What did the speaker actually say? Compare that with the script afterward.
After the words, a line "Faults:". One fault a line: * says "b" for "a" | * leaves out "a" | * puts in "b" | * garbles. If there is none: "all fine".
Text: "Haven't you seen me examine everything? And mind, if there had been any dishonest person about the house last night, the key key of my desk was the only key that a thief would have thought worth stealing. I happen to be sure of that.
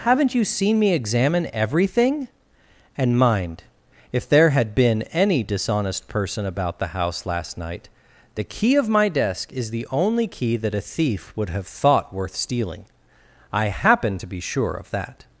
"Haven't you seen me examine everything? And mind, if there had been any dishonest person about the house last night, the key of my desk is the only key that a thief would have thought worth stealing. I happen to be sure of that.
Faults:
* leaves out "key"
* says "is" for "was"